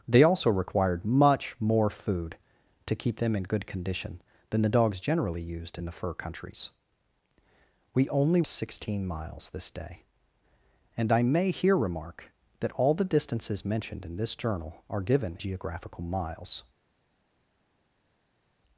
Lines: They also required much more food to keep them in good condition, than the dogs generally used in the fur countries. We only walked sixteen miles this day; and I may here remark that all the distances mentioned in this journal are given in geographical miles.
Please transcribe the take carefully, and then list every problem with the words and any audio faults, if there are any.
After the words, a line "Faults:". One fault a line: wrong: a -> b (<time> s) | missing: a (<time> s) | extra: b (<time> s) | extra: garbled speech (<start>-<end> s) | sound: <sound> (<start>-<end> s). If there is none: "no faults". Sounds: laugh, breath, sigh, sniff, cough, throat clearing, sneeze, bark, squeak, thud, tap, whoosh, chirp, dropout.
They also required much more food to keep them in good condition, than the dogs generally used in the fur countries. We only sixteen miles this day; and I may here remark that all the distances mentioned in this journal are given geographical miles.
Faults:
missing: walked (8.4 s)
missing: in (15.4 s)